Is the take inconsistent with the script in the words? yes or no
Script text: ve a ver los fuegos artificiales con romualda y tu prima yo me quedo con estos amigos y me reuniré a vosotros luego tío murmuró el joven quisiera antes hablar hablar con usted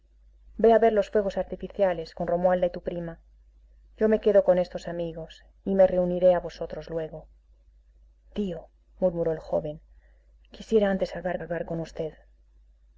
no